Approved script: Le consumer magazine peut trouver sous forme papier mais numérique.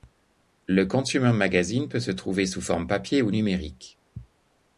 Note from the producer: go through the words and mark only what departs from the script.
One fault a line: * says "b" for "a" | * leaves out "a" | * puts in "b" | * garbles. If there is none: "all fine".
* puts in "se"
* says "ou" for "mais"